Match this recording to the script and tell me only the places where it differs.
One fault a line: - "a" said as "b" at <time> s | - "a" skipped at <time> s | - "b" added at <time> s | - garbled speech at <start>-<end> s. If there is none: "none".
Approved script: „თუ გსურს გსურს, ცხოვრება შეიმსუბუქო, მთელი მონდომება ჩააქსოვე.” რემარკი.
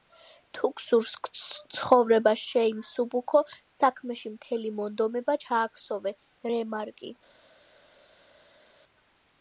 - "გსურს" skipped at 1.1 s
- "საქმეში" added at 3.8 s